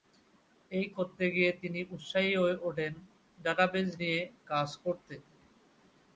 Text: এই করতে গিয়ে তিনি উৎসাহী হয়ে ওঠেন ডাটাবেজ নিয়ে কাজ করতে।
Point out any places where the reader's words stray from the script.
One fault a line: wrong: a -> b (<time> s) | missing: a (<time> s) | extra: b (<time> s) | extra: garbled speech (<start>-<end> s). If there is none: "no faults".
no faults